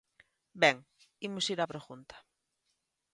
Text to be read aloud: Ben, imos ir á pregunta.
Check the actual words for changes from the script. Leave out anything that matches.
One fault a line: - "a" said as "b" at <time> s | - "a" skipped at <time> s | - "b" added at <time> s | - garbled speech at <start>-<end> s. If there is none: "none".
none